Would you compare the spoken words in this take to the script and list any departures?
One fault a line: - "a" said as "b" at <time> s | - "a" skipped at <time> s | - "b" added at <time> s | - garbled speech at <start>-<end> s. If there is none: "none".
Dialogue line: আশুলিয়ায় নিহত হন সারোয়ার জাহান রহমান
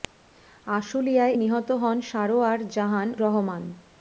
none